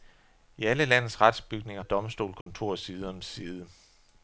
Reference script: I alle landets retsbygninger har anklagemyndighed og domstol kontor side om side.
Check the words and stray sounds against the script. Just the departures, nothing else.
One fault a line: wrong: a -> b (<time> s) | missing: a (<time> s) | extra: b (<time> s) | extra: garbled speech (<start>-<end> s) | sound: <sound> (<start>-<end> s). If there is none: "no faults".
missing: har anklagemyndighed (1.8 s)
sound: dropout (2.4-2.5 s)